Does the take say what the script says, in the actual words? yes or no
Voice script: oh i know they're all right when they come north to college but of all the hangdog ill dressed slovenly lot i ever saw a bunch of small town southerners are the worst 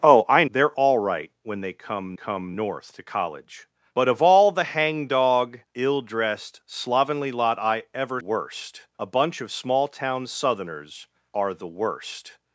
no